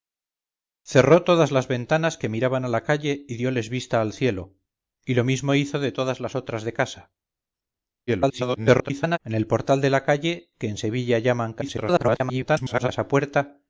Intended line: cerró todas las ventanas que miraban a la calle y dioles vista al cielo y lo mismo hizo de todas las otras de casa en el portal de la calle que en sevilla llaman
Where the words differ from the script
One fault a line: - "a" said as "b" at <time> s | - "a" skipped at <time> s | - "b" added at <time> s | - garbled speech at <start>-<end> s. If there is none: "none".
- garbled speech at 8.1-9.2 s
- garbled speech at 11.6-12.9 s